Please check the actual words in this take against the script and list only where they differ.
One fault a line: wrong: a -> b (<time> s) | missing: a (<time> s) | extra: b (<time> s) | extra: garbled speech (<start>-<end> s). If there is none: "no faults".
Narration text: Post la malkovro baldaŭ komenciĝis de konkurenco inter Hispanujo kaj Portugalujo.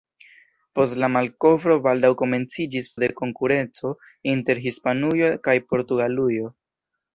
no faults